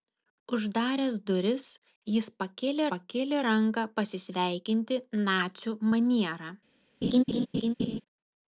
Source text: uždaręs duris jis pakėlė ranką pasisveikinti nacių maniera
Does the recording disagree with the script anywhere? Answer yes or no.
yes